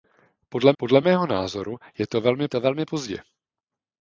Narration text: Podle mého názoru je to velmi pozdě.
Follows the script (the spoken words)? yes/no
no